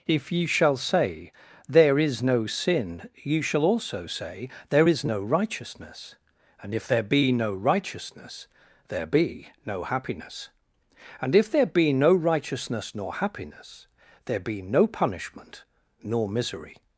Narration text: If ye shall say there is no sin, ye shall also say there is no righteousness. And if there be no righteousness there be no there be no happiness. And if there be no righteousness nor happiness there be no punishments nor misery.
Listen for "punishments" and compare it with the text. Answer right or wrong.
wrong